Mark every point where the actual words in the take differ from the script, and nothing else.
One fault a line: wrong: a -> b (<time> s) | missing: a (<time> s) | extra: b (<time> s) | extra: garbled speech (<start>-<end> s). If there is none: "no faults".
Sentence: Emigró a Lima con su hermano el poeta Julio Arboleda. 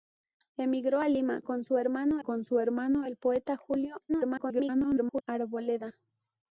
extra: con su hermano (2.2 s)
extra: garbled speech (4.1-5.2 s)